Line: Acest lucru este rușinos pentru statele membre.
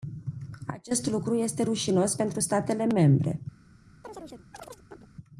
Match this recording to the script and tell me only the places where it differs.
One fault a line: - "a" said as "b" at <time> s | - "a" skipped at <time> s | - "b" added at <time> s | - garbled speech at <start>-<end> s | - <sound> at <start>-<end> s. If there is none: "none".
- chirp at 4.0-5.1 s